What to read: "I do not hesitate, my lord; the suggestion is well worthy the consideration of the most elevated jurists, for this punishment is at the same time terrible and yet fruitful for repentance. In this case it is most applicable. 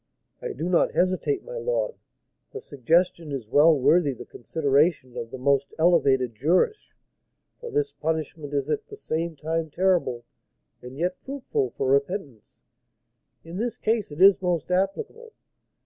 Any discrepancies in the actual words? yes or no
no